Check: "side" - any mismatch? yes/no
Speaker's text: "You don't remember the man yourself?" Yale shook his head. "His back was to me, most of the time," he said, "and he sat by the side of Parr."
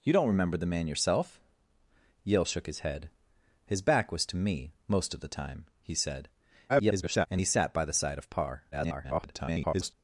no